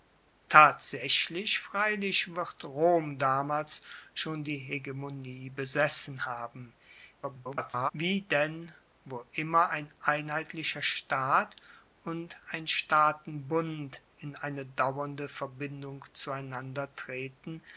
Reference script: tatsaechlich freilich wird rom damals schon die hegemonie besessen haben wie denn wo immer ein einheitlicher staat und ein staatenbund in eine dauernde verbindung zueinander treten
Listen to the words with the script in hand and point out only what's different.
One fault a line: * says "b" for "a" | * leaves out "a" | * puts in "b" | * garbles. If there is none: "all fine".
* garbles